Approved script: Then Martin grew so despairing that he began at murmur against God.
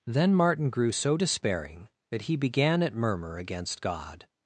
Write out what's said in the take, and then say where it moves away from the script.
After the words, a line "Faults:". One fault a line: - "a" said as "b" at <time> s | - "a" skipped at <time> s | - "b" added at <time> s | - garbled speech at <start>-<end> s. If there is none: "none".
Then Martin grew so despairing that he began at murmur against God.
Faults:
none